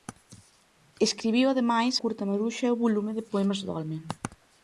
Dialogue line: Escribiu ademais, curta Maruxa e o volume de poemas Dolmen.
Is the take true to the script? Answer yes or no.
yes